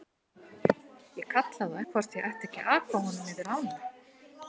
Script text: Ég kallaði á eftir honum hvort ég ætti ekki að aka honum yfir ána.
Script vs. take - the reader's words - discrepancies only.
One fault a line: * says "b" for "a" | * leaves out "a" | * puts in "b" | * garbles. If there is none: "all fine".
* leaves out "eftir honum"